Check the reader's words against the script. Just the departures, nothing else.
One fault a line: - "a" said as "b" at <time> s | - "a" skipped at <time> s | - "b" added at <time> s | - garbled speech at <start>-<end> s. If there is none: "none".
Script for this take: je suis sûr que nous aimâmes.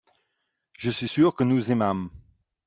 none